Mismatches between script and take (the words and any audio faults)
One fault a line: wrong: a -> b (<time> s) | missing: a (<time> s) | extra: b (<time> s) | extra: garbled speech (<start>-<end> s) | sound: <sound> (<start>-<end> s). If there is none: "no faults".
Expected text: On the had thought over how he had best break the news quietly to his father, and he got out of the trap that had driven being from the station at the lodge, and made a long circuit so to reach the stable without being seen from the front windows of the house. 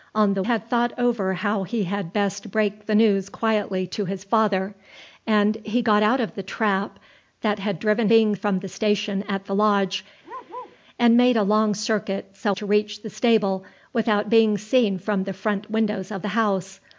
sound: bark (10.2-10.8 s)